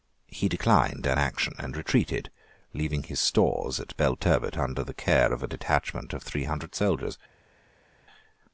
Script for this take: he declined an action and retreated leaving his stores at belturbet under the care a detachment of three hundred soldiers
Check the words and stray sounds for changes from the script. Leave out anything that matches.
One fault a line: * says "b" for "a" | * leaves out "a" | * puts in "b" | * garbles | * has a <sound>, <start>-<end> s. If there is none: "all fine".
* puts in "of"